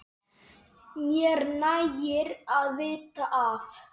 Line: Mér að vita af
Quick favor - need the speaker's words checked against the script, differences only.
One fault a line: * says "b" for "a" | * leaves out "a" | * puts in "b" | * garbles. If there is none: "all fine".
* puts in "nægir"